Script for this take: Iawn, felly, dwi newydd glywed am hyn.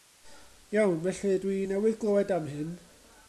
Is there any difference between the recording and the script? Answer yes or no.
no